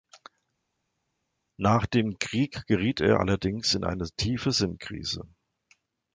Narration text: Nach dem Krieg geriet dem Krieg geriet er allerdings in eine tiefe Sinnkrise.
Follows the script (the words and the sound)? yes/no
no